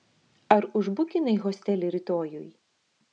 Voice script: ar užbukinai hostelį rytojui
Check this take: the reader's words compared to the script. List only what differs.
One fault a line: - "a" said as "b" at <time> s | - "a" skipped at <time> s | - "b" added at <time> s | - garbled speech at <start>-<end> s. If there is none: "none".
none